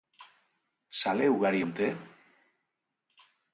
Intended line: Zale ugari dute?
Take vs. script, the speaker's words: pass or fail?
pass